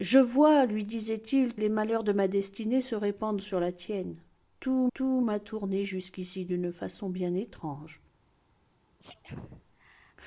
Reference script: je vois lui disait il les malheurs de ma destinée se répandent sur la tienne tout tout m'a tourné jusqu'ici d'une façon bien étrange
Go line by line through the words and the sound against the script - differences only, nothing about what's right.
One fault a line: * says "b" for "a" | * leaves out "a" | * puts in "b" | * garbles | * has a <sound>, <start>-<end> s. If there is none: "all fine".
* has a sneeze, 9.0-10.2 s